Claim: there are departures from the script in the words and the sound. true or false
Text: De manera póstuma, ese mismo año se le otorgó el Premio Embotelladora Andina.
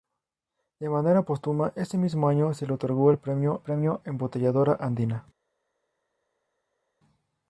true